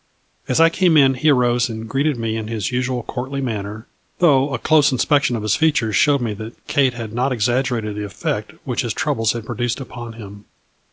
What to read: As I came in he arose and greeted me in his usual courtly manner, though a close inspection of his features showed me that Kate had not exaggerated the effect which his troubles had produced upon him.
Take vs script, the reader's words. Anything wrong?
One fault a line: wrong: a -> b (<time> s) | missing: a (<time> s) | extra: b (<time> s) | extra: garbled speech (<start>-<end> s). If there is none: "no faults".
no faults